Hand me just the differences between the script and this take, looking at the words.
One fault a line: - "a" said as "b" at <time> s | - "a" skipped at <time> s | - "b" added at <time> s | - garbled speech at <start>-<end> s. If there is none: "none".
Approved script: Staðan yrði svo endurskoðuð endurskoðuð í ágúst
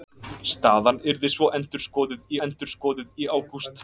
none